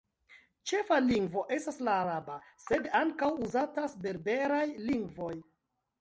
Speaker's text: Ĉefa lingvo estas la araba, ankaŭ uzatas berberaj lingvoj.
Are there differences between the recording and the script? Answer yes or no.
yes